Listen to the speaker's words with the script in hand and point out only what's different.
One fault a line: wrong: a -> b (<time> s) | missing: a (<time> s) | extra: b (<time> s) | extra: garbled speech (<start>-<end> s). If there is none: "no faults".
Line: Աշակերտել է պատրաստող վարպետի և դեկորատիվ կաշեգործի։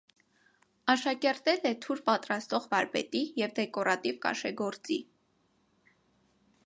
extra: թուր (1.9 s)